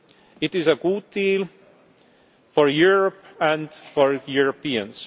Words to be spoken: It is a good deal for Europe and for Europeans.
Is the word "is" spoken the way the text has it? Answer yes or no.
yes